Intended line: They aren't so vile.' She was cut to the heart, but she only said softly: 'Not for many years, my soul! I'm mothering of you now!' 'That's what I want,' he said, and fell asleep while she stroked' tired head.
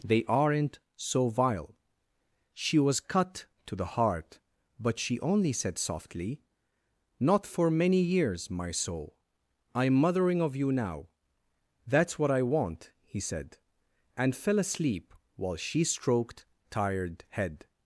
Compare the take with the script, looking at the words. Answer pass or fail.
pass